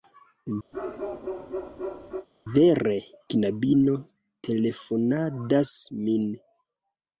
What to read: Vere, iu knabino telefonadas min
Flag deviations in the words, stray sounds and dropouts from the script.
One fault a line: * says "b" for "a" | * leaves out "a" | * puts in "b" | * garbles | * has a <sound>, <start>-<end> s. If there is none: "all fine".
* has a bark, 0.7-2.3 s
* leaves out "iu"